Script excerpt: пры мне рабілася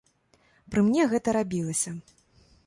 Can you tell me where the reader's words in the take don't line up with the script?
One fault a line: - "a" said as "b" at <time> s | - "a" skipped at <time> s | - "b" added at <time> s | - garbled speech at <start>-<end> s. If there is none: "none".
- "гэта" added at 1.1 s